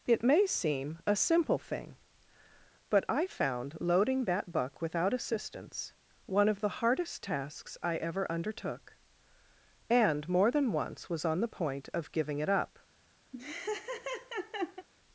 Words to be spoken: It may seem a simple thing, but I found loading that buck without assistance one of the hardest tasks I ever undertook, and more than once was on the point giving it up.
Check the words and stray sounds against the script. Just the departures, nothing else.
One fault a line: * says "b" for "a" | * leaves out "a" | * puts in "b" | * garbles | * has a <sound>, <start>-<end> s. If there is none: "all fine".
* puts in "of"
* has a laugh, 13.3-14.9 s